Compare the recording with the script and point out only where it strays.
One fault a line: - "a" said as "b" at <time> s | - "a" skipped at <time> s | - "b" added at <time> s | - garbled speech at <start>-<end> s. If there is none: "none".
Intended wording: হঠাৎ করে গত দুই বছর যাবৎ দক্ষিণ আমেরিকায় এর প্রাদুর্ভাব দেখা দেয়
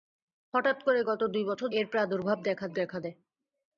- "যাবৎ দক্ষিণ আমেরিকায়" skipped at 1.7 s
- "দেখা" added at 2.7 s